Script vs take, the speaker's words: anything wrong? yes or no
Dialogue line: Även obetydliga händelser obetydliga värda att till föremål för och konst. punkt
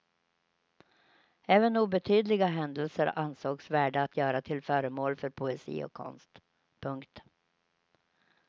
yes